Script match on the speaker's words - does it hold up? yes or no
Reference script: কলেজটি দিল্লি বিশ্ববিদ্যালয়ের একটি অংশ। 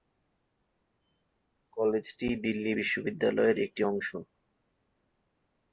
yes